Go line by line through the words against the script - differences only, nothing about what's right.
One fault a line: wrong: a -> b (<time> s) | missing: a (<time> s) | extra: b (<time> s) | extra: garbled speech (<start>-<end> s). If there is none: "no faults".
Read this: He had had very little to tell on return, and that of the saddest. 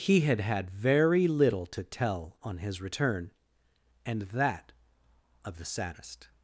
extra: his (2.6 s)